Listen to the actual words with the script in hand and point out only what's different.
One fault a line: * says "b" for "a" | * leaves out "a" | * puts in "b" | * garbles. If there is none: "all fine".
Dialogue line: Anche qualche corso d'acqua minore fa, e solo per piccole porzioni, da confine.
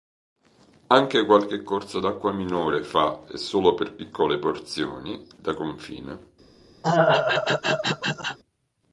all fine